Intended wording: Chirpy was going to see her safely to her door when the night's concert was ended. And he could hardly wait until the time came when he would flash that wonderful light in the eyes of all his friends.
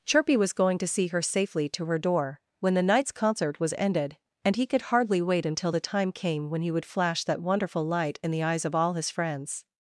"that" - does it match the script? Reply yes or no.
yes